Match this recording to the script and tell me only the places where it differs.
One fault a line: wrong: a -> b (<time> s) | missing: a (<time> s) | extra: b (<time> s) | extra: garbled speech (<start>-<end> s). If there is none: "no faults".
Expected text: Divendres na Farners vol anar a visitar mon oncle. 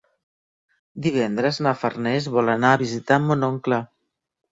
no faults